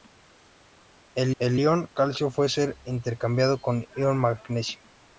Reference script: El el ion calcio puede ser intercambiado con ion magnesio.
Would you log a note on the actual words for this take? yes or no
no